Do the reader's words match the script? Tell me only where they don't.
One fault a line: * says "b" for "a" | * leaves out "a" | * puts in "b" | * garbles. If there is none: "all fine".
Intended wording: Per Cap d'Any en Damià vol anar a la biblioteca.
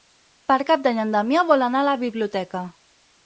all fine